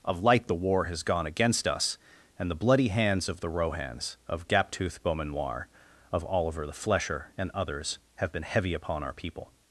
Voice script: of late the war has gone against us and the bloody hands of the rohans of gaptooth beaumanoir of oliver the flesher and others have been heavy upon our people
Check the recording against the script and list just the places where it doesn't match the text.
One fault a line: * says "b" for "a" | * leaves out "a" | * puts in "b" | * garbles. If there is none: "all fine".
* says "light" for "late"